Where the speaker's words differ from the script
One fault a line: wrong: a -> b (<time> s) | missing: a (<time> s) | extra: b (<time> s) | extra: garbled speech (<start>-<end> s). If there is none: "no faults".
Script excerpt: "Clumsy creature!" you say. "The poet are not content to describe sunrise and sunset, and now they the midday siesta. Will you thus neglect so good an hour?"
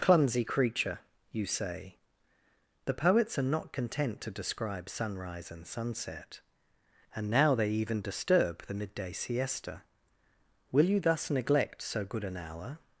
wrong: poet -> poets (2.9 s)
extra: even disturb (7.7 s)